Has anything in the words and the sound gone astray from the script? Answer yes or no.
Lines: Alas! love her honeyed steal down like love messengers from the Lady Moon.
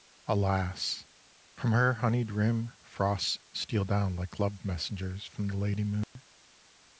yes